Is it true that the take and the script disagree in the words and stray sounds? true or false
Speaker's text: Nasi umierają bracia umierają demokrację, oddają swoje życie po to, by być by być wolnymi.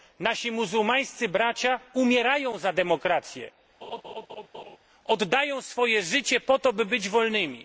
true